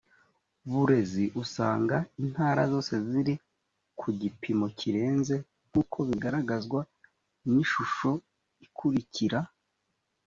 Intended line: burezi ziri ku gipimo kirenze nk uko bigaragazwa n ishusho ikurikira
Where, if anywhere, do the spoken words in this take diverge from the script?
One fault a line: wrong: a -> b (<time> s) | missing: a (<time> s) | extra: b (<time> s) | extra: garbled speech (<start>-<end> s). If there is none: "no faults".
extra: usanga intara zose (1.4 s)